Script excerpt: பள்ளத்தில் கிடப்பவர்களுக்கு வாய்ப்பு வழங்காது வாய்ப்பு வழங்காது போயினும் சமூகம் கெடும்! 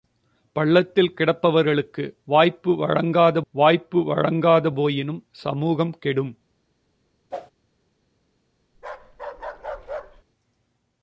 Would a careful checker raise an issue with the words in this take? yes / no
no